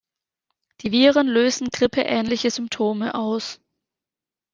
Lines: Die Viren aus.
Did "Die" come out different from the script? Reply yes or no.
no